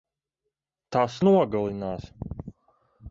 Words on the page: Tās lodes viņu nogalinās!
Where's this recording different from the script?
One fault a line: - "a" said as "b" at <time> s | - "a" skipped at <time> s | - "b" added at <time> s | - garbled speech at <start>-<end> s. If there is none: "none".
- "lodes viņu" skipped at 1.2 s